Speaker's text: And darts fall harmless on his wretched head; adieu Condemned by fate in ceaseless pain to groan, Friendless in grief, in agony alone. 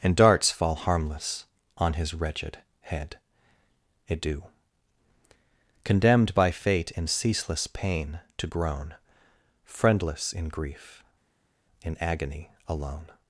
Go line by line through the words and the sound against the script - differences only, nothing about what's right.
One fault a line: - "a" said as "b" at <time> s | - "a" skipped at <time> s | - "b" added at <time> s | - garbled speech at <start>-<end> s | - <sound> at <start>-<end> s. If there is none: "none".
none